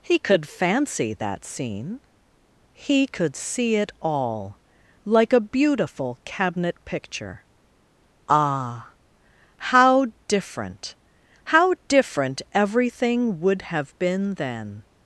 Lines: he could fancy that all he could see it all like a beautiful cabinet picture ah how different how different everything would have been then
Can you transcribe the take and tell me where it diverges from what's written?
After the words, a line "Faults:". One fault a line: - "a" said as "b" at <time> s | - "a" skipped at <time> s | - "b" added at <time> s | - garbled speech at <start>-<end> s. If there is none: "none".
he could fancy that scene he could see it all like a beautiful cabinet picture ah how different how different everything would have been then
Faults:
- "all" said as "scene" at 1.4 s